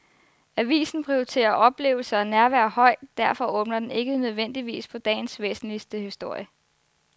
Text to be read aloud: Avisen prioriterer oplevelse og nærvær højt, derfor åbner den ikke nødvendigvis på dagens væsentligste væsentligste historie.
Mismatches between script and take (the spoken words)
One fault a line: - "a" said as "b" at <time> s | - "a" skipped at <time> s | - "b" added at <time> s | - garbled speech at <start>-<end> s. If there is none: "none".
- "væsentligste" skipped at 6.0 s